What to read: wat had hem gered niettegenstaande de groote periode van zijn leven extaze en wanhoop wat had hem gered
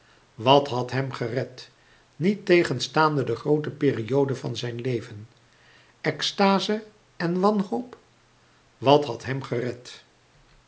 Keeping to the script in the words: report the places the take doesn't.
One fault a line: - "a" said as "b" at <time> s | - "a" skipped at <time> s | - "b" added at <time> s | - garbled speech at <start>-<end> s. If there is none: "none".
none